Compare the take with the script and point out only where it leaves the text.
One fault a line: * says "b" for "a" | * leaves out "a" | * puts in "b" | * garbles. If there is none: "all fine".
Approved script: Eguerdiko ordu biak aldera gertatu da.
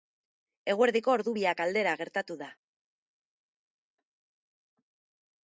all fine